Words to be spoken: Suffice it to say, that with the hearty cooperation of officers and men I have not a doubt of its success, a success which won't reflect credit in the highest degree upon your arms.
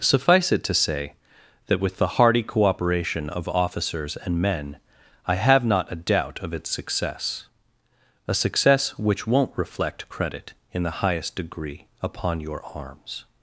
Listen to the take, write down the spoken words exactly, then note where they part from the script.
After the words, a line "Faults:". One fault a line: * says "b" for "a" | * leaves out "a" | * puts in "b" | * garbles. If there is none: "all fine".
Suffice it to say, that with the hearty cooperation of officers and men I have not a doubt of its success, a success which won't reflect credit in the highest degree upon your arms.
Faults:
all fine